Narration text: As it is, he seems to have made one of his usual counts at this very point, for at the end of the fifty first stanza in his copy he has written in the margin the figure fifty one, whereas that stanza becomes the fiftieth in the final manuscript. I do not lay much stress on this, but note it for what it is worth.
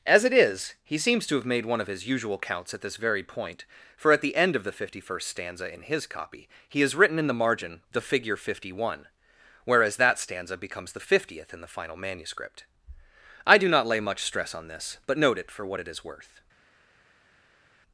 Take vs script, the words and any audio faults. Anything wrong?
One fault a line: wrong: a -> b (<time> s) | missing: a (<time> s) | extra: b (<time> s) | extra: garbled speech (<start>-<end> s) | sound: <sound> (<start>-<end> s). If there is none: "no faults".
no faults